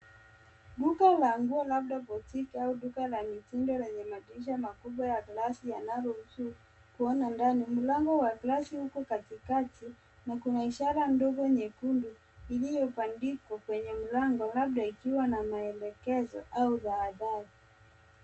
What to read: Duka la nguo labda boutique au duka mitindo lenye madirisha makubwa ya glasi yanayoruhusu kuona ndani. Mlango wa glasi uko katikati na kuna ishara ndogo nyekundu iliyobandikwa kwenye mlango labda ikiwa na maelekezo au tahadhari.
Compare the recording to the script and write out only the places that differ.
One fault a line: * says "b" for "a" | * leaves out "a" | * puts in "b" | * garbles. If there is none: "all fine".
* puts in "la"